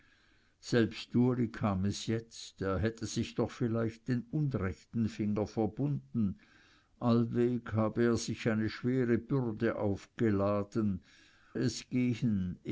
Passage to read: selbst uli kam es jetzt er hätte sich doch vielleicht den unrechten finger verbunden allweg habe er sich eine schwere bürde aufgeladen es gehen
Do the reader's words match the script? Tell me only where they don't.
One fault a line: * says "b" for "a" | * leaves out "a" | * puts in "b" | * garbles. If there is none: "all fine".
all fine